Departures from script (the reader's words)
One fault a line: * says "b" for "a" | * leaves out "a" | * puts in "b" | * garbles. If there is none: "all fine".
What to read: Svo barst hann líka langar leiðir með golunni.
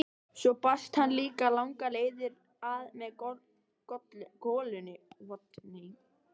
* puts in "að"